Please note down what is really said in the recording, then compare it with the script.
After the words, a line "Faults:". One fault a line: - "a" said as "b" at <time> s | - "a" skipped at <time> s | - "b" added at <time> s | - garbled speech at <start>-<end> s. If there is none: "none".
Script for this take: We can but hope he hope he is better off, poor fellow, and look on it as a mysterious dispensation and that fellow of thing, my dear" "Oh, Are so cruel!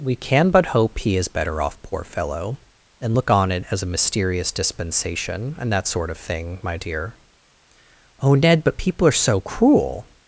We can but hope he is better off, poor fellow, and look on it as a mysterious dispensation and that sort of thing, my dear" "Oh, Ned, but people are so cruel!
Faults:
- "hope he" skipped at 1.1 s
- "fellow" said as "sort" at 5.9 s
- "Ned but people" added at 8.3 s